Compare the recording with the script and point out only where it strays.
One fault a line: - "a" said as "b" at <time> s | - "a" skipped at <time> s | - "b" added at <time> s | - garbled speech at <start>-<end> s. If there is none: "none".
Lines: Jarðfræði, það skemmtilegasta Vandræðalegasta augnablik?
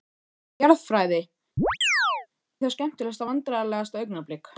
none